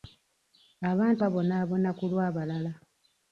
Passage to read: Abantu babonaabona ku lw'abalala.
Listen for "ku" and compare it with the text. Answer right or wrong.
right